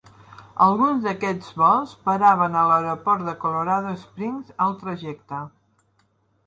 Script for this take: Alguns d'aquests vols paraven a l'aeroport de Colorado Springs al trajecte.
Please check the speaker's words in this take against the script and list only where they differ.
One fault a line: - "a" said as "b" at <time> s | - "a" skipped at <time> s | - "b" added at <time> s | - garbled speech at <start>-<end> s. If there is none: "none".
none